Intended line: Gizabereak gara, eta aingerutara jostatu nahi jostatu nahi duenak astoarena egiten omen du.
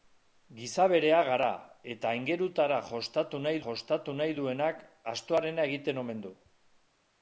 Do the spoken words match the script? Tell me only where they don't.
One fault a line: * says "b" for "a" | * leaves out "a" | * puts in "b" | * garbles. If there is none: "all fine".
all fine